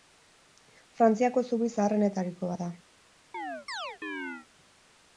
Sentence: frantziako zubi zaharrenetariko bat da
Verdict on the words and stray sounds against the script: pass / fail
fail